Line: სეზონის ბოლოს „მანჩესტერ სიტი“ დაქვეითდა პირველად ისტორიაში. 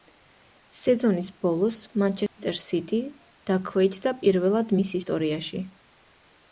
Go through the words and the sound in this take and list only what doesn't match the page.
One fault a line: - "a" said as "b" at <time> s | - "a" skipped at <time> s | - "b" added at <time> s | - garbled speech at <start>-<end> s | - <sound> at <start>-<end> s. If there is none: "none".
- dropout at 2.3-2.4 s
- "მის" added at 4.8 s